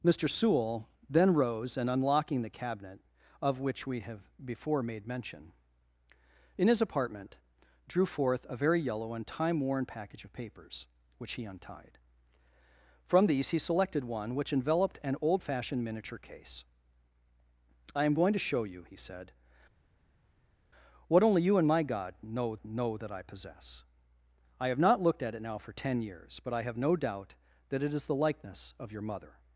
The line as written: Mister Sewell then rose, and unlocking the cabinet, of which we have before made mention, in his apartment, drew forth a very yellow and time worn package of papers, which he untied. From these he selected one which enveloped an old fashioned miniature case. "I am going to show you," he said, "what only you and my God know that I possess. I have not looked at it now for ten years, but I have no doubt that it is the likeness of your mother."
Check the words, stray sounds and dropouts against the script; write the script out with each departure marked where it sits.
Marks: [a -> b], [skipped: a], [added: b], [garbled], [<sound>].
Mister Sewell then rose, and unlocking the cabinet, of which we have before made mention, in his apartment, drew forth a very yellow and time worn package of papers, which he untied. From these he selected one which enveloped an old fashioned miniature case. "I am going to show you," he said, "what only you and my God know [added: know] that I possess. I have not looked at it now for ten years, but I have no doubt that it is the likeness of your mother."